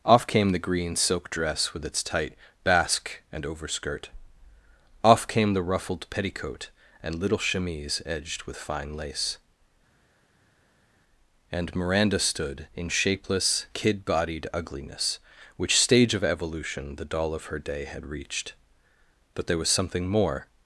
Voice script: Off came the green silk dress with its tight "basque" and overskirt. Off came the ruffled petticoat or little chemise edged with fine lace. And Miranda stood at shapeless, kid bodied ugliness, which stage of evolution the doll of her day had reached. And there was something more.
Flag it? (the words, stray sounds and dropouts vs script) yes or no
yes